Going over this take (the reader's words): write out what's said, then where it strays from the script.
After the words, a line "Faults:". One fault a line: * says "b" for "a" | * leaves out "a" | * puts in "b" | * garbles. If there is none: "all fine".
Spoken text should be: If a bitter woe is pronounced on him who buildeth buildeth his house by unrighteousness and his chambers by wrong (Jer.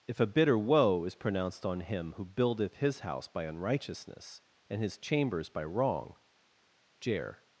If a bitter woe is pronounced on him who buildeth his house by unrighteousness and his chambers by wrong (Jer.
Faults:
* leaves out "buildeth"